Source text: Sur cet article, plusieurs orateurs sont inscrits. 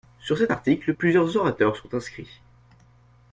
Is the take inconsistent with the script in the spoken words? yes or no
no